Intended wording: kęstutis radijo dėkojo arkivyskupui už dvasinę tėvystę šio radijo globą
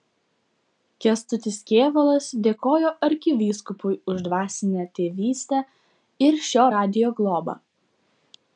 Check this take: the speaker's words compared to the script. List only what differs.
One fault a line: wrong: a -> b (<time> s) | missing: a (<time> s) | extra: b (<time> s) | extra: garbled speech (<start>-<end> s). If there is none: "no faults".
wrong: radijo -> kėvalas (1.7 s)
extra: ir (6.3 s)